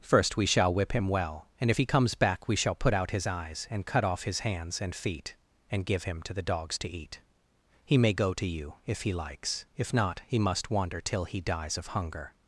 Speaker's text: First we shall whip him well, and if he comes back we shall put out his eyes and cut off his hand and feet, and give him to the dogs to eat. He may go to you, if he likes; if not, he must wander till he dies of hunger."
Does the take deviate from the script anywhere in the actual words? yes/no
yes